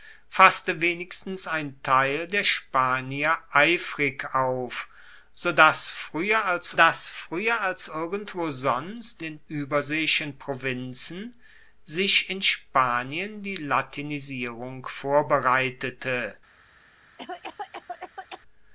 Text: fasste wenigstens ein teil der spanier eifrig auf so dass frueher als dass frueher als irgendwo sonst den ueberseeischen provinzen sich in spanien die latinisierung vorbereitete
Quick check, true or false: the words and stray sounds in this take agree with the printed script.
false